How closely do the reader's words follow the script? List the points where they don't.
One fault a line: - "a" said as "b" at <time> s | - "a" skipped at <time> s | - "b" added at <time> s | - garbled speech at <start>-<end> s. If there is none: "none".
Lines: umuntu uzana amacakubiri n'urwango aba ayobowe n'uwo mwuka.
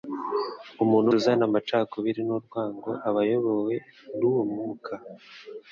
none